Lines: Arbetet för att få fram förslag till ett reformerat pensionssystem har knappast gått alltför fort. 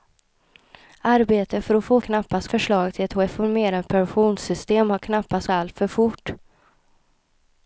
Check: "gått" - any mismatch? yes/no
yes